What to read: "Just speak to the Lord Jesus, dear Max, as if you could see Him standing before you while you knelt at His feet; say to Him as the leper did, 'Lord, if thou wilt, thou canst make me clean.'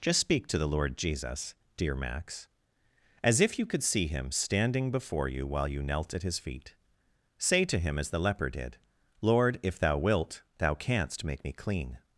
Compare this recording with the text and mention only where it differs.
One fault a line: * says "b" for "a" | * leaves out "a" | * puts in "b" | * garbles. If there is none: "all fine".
all fine